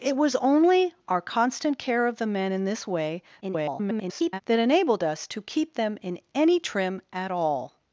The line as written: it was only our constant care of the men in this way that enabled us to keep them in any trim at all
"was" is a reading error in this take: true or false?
false